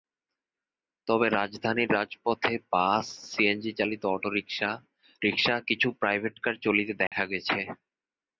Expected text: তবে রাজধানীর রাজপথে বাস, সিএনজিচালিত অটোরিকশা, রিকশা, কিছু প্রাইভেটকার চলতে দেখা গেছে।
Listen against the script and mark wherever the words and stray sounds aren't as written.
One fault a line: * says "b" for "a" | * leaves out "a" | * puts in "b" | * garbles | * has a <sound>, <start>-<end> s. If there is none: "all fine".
* has a dropout, 7.1-7.1 s